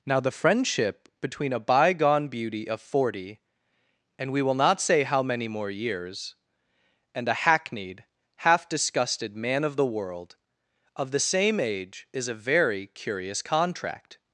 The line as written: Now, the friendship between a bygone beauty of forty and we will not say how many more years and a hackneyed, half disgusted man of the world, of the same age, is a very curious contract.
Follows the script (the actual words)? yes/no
yes